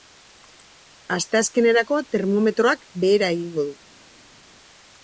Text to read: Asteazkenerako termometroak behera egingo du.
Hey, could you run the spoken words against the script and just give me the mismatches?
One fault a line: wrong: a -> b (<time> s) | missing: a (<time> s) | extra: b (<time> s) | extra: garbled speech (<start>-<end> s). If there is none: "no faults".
no faults